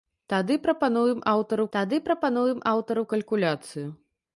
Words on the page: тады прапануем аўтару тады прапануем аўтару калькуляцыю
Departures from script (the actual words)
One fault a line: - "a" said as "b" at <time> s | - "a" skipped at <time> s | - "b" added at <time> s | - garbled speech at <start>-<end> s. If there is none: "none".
none